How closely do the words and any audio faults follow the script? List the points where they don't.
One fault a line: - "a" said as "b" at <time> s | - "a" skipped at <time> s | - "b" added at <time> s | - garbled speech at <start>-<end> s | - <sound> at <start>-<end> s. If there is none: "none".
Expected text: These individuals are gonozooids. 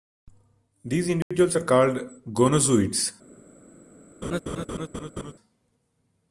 - dropout at 1.2-1.3 s
- "called" added at 1.6 s
- laugh at 4.2-5.3 s